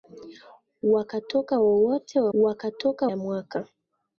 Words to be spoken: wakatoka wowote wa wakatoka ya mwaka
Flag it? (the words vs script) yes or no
no